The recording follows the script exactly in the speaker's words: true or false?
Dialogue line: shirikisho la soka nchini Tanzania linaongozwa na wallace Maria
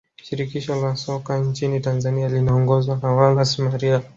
true